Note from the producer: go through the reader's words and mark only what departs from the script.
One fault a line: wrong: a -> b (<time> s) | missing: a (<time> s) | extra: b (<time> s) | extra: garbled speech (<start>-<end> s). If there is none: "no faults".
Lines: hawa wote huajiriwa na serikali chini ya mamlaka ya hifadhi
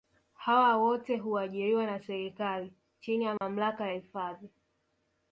no faults